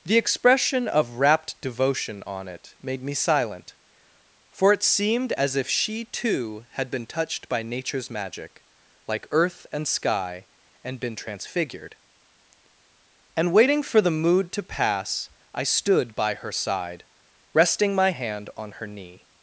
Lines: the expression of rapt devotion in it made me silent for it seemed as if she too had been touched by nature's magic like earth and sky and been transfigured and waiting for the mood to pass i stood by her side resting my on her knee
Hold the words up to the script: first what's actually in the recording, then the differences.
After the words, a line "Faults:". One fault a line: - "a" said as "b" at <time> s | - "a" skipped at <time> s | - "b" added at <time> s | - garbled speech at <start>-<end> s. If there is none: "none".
the expression of rapt devotion on it made me silent for it seemed as if she too had been touched by nature's magic like earth and sky and been transfigured and waiting for the mood to pass i stood by her side resting my hand on her knee
Faults:
- "in" said as "on" at 2.2 s
- "hand" added at 18.1 s